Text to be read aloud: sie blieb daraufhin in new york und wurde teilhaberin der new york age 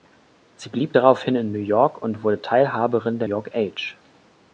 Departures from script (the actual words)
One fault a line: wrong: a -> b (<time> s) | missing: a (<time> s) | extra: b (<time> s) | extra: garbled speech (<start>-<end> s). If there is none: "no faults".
missing: new (3.3 s)